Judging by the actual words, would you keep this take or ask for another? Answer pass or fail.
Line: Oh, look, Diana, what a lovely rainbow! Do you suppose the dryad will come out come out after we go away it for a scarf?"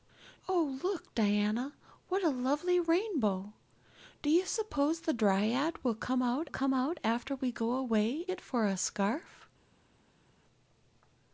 pass